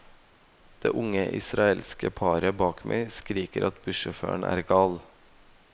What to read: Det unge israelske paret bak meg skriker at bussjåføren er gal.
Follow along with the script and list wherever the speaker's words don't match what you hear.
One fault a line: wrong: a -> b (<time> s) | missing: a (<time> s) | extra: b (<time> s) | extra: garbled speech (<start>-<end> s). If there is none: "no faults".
no faults